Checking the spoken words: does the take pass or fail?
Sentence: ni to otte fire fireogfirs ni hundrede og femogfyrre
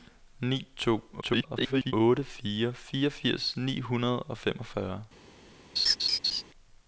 fail